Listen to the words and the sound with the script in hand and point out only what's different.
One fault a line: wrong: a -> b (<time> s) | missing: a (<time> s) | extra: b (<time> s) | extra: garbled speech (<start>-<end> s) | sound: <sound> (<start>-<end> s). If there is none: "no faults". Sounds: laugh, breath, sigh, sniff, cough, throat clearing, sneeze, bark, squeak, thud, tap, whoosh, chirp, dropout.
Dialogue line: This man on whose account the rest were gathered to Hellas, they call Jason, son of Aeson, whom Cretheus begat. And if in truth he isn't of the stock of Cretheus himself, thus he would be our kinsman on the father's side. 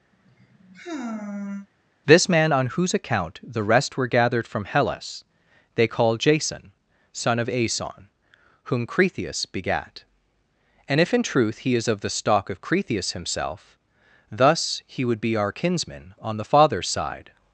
sound: sigh (0.1-1.7 s)
wrong: to -> from (4.5 s)
wrong: isn't -> is (11.7 s)